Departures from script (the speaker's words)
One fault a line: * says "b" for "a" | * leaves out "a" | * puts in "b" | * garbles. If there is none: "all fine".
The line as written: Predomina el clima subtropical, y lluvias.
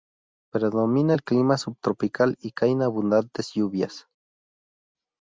* puts in "caen abundantes"